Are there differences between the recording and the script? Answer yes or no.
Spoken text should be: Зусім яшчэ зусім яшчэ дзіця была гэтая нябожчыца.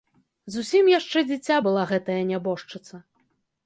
yes